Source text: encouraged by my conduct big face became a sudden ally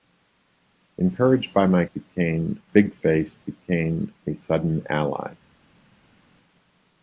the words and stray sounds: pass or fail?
fail